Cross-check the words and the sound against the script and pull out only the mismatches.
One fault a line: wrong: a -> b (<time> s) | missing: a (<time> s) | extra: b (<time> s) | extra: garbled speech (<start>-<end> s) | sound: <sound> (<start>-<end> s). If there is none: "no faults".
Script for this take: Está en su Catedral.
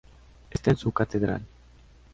no faults